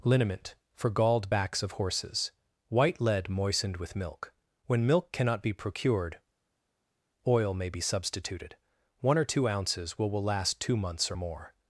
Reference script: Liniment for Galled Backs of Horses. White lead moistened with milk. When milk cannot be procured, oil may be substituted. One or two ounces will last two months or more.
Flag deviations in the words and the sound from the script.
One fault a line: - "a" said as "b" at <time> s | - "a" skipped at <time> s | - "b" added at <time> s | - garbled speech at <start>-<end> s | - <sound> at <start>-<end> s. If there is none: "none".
- "will" added at 10.1 s